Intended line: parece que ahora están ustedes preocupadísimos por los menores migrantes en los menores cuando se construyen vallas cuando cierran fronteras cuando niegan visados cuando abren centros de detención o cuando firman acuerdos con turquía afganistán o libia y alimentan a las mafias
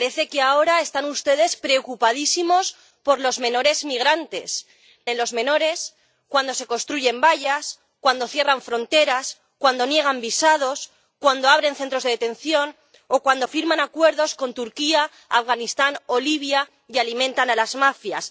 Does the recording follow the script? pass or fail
pass